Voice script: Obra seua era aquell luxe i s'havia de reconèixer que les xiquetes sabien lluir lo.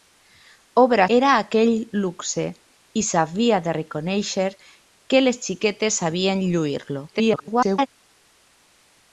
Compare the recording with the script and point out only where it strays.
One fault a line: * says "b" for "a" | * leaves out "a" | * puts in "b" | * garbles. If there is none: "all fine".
* leaves out "seua"
* garbles